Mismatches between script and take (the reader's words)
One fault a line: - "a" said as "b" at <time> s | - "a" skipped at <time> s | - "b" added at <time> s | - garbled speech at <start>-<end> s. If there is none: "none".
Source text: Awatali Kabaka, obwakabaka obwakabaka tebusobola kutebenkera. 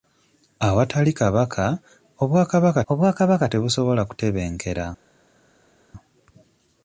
none